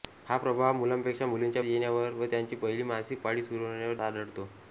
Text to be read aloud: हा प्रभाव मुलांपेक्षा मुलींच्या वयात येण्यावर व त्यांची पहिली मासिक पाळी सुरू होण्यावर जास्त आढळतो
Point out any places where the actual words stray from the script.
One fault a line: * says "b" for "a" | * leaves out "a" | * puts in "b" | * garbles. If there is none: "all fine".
* leaves out "वयात"
* leaves out "जास्त"